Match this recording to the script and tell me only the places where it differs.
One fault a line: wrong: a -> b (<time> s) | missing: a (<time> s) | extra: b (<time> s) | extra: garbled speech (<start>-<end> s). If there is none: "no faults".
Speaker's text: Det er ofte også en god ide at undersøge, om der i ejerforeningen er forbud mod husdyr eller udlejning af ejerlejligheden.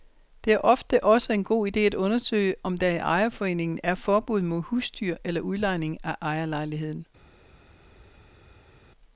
no faults